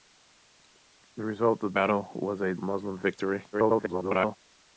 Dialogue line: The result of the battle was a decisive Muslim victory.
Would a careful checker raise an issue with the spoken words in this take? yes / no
yes